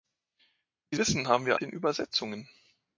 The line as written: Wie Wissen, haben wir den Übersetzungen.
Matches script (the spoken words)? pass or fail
pass